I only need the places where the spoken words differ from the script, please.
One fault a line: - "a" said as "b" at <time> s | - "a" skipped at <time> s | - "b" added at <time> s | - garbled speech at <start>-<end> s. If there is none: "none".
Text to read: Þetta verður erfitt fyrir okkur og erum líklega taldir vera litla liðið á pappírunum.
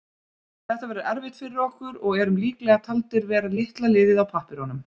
none